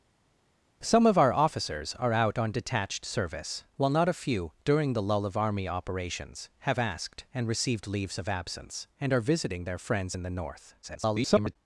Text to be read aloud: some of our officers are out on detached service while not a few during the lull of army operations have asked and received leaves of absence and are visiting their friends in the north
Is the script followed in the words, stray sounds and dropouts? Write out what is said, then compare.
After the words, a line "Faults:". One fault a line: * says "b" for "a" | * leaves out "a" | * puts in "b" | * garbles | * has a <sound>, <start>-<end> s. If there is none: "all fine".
some of our officers are out on detached service while not a few during the lull of army operations have asked and received leaves of absence and are visiting their friends in the north [garbled]
Faults:
* garbles